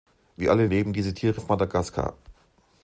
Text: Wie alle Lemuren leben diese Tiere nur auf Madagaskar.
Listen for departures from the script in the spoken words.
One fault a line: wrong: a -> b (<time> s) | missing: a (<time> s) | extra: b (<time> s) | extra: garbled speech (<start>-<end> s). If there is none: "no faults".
missing: Lemuren (0.7 s)
missing: nur (1.4 s)